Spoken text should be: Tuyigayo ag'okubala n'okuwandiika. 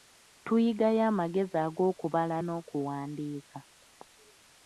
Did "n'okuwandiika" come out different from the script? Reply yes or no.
no